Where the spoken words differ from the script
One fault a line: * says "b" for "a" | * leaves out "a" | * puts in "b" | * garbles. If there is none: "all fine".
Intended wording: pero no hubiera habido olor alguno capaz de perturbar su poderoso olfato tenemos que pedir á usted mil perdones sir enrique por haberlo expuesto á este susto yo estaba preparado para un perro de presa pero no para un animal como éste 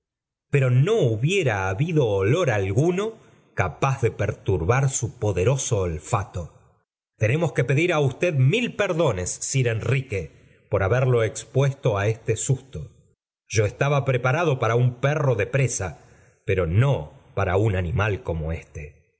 all fine